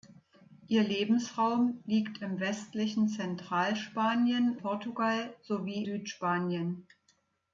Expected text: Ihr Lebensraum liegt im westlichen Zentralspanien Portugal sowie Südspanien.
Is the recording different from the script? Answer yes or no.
no